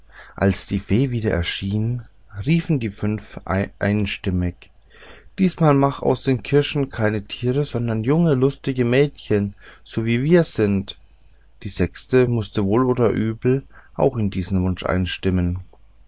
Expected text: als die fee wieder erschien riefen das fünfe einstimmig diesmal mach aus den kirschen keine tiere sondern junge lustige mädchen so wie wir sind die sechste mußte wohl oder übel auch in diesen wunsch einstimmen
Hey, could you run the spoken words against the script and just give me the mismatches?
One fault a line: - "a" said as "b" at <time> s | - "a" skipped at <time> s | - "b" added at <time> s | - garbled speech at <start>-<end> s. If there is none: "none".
- "das" said as "die" at 2.8 s